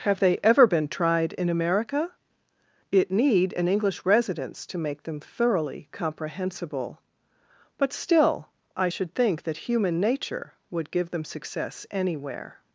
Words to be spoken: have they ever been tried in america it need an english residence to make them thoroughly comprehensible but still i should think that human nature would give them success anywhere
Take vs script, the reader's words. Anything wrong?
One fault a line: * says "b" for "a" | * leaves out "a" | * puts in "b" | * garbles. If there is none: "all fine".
all fine